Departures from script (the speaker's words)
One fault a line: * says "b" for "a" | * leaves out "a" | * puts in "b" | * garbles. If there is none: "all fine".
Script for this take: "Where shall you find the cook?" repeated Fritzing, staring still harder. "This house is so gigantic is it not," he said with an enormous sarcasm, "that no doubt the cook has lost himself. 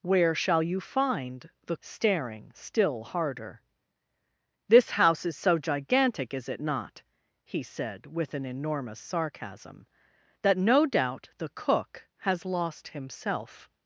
* leaves out "cook repeated Fritzing"